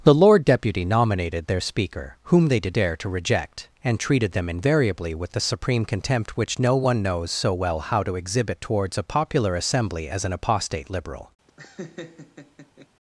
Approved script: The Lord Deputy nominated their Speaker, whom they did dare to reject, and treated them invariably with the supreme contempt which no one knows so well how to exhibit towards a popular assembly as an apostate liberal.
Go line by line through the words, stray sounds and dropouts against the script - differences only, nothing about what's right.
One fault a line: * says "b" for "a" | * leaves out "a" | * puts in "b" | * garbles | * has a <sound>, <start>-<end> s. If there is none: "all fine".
* has a laugh, 11.5-12.9 s